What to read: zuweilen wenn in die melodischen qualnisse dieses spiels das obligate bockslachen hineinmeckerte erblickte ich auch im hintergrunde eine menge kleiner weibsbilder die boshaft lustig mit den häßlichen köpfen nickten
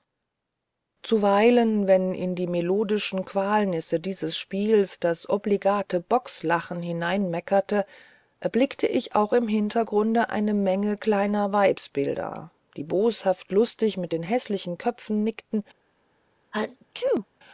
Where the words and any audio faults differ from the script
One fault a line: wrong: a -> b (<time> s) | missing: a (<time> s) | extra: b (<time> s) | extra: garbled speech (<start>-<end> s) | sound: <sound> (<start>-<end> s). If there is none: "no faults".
sound: sneeze (16.5-17.3 s)